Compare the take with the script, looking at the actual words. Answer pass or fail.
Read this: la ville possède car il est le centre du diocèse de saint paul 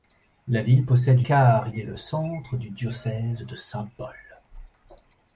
pass